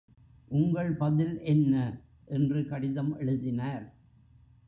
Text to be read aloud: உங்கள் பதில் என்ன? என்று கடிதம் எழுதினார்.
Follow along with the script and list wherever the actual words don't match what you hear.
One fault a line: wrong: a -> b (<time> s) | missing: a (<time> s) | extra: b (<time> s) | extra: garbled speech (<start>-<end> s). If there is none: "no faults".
no faults